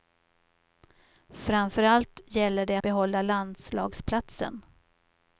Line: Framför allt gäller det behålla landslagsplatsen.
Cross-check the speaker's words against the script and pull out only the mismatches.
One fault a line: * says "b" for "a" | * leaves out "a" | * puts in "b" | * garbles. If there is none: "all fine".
all fine